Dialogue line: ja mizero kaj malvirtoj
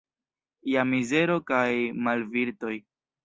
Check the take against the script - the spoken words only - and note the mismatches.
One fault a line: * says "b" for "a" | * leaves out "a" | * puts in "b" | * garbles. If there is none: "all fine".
all fine